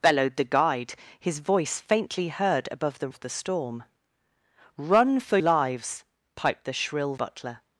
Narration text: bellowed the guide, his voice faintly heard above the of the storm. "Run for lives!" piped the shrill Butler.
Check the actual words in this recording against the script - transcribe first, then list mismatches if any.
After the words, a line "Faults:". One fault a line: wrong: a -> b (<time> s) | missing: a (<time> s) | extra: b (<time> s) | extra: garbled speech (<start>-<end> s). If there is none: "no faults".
bellowed the guide, his voice faintly heard above the of the storm. "Run for lives!" piped the shrill Butler.
Faults:
no faults